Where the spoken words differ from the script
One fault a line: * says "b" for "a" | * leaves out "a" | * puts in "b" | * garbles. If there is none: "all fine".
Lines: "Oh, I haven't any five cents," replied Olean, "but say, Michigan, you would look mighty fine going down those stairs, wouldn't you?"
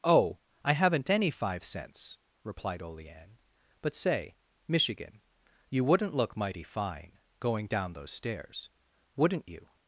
* says "wouldn't" for "would"